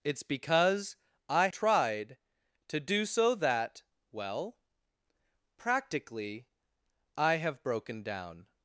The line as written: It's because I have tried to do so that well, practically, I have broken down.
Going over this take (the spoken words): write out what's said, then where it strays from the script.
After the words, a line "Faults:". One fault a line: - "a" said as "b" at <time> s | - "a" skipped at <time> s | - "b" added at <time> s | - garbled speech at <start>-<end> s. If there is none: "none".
It's because I tried to do so that well, practically, I have broken down.
Faults:
- "have" skipped at 1.5 s